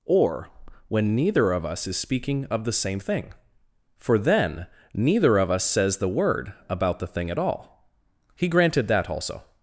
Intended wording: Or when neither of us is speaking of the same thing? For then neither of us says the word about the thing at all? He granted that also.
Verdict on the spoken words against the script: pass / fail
pass